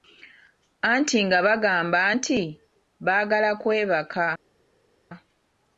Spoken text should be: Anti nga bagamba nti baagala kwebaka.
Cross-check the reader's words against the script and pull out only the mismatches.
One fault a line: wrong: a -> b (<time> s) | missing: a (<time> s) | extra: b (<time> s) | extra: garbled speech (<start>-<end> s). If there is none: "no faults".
no faults